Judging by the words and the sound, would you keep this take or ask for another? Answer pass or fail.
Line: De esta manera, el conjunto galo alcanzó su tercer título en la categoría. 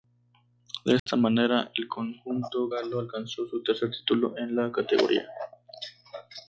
fail